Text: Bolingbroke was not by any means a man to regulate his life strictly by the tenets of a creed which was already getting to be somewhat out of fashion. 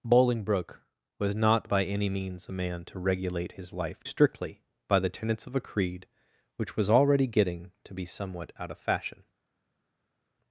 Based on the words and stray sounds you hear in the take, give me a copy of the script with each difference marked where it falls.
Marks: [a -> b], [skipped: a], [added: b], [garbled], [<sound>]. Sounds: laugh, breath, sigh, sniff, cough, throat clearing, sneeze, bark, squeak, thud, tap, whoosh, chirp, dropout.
Bolingbroke was not by any means a man to regulate his life strictly by the tenets of a creed which was already getting to be somewhat out of fashion.